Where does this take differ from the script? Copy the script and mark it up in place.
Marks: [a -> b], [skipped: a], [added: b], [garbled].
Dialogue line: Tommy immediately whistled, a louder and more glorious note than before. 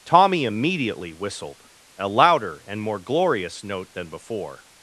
Tommy immediately whistled, a louder and more glorious note than before.